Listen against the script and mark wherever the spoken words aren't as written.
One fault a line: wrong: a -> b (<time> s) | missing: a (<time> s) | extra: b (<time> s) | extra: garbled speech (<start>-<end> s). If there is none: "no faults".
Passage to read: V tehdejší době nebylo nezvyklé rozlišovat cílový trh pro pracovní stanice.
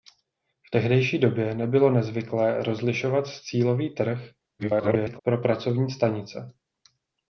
extra: garbled speech (4.6-5.2 s)